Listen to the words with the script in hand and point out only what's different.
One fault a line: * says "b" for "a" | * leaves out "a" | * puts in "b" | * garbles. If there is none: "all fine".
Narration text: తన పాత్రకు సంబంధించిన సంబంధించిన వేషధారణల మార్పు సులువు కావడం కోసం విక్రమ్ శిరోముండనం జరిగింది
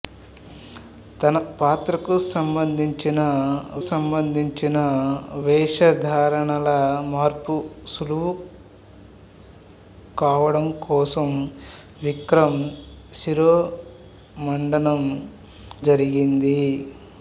all fine